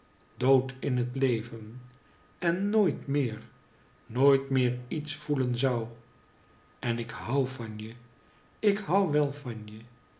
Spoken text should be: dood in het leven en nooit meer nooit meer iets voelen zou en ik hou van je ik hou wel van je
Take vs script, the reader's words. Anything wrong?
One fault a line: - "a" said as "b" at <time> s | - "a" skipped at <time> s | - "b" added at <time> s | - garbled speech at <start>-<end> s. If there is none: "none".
none